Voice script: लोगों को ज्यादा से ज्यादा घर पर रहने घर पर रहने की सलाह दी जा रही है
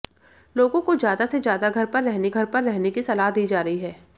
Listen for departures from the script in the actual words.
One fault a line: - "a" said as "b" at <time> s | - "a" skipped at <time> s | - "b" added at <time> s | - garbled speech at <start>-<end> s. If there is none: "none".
none